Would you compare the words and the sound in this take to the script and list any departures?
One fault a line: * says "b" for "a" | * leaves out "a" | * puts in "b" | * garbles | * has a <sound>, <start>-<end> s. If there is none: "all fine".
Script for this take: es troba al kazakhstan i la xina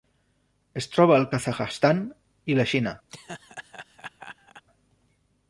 * has a laugh, 3.1-4.6 s